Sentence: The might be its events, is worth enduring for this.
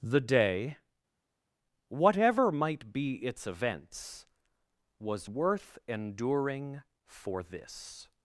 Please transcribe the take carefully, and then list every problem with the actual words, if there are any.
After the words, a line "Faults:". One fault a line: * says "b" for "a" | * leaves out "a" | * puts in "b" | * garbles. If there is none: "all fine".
The day, whatever might be its events, was worth enduring for this.
Faults:
* puts in "day whatever"
* says "was" for "is"